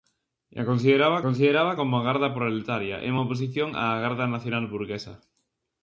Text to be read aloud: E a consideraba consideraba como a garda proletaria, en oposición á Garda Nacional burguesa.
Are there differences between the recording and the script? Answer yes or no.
no